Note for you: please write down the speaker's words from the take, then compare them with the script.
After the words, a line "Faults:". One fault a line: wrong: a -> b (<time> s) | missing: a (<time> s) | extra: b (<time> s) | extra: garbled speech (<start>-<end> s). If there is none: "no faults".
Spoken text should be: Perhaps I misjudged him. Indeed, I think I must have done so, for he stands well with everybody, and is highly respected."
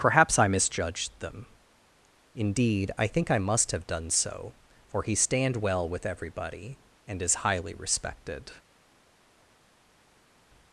Perhaps I misjudged them. Indeed, I think I must have done so, for he stand well with everybody, and is highly respected."
Faults:
wrong: him -> them (1.2 s)
wrong: stands -> stand (5.1 s)